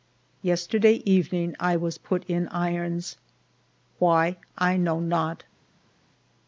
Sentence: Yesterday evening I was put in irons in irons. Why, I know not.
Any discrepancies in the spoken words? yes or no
yes